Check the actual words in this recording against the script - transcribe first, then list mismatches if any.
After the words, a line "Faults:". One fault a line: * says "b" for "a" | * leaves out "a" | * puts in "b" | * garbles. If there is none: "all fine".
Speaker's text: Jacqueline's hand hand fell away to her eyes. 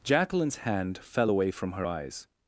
Jacqueline's hand fell away from her eyes.
Faults:
* leaves out "hand"
* says "from" for "to"